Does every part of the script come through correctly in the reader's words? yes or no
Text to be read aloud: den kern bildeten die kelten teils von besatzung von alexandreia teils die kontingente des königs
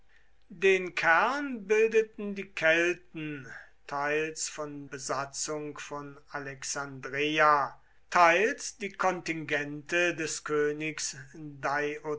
yes